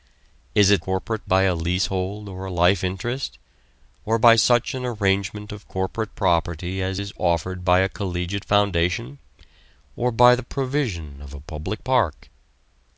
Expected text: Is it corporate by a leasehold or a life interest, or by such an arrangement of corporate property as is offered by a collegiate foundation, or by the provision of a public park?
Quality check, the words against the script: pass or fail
pass